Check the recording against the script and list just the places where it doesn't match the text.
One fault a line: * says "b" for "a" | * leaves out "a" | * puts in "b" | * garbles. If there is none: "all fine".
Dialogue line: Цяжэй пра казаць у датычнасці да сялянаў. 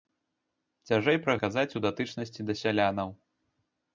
all fine